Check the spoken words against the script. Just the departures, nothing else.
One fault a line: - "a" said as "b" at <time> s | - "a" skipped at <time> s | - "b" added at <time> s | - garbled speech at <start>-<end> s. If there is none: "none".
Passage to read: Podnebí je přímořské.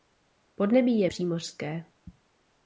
none